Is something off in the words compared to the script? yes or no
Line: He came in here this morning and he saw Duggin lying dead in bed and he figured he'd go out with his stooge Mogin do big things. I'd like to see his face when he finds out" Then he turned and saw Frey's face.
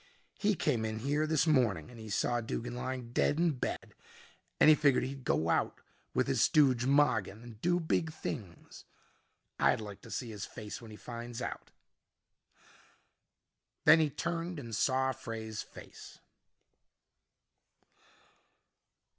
yes